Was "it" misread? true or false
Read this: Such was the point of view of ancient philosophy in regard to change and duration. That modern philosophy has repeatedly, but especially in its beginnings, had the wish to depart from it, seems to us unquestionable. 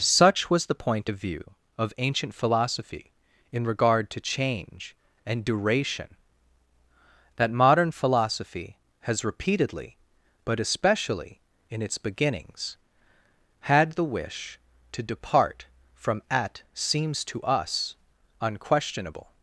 true